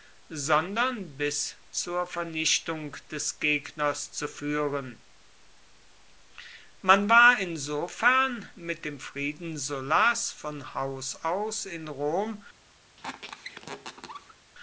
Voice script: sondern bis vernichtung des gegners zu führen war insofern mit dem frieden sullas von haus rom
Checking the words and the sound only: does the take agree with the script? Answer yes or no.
no